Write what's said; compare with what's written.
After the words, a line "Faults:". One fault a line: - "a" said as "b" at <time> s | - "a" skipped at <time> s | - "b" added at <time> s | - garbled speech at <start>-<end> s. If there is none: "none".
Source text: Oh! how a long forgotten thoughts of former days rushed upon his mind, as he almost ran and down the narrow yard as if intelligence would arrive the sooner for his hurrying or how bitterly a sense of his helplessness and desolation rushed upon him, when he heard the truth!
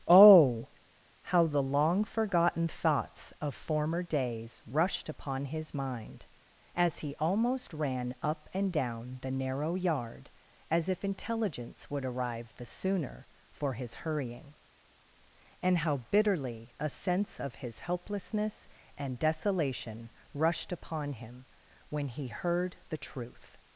Oh! how the long forgotten thoughts of former days rushed upon his mind, as he almost ran up and down the narrow yard as if intelligence would arrive the sooner for his hurrying and how bitterly a sense of his helplessness and desolation rushed upon him, when he heard the truth!
Faults:
- "a" said as "the" at 1.4 s
- "up" added at 8.2 s
- "or" said as "and" at 15.6 s